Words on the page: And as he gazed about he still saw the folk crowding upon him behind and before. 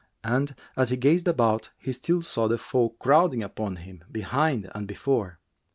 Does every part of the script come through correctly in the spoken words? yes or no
yes